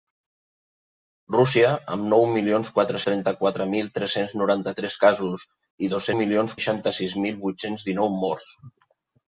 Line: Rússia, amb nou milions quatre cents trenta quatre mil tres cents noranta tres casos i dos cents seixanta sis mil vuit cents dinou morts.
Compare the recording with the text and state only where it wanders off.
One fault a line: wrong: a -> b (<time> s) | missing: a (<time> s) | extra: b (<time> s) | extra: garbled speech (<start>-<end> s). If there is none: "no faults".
missing: cents (3.0 s)
wrong: cents -> milions (6.2 s)